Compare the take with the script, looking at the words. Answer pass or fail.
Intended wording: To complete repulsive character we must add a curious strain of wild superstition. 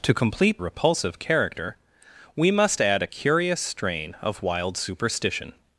pass